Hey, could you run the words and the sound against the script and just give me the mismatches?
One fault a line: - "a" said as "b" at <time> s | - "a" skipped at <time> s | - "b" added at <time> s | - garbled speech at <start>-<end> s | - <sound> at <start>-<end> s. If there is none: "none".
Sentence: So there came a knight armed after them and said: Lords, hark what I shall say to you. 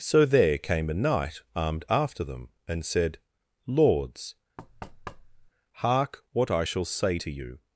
- thud at 4.6-5.5 s